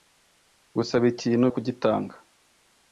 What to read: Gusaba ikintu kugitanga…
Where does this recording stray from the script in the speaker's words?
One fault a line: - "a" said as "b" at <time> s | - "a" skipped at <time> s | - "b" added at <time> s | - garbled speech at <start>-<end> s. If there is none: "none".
none